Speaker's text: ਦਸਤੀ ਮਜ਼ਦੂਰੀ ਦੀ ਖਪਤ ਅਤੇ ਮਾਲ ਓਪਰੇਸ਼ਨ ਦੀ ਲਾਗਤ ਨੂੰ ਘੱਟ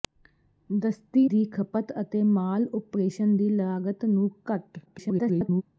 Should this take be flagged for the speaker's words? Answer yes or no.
yes